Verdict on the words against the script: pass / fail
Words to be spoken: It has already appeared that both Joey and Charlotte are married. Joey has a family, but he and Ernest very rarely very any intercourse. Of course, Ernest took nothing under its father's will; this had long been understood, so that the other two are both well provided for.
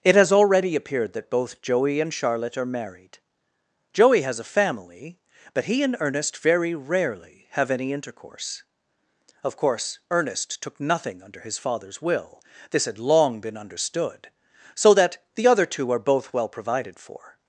fail